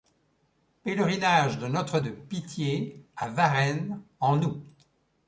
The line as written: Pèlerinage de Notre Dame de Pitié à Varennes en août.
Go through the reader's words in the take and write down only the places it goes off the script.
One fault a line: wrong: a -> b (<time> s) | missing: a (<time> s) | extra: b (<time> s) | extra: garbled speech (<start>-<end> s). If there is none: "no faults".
missing: Dame (2.0 s)